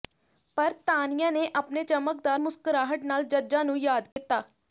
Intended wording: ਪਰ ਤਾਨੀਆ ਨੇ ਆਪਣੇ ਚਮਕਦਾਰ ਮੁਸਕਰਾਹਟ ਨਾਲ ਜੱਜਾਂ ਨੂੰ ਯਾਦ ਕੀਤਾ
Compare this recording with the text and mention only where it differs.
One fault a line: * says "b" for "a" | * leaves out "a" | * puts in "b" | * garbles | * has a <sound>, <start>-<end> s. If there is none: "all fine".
* has a dropout, 4.1-4.2 s